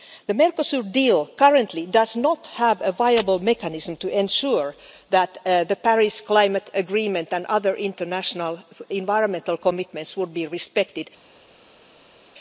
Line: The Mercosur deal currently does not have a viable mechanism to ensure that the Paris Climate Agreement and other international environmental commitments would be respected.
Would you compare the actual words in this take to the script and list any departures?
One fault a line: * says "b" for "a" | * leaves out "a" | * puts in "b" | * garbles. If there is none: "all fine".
all fine